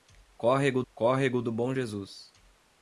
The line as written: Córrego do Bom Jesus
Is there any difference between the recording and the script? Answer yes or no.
yes